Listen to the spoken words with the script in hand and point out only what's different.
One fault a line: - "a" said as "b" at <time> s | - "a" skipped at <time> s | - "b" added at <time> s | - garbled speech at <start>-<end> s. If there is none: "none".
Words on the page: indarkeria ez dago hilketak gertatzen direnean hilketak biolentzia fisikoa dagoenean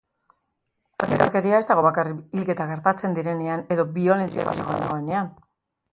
- "bakarrik" added at 1.9 s
- "hilketak" said as "edo" at 3.8 s